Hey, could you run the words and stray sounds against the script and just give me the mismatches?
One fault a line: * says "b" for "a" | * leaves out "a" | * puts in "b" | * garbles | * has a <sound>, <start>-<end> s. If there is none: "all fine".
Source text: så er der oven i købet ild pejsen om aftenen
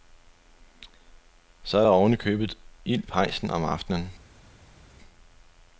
all fine